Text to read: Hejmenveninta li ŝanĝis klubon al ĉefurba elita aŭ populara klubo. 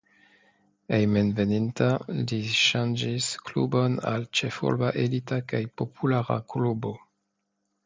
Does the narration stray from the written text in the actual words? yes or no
yes